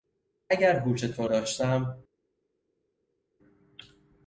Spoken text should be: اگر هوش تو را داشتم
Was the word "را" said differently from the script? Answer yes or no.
yes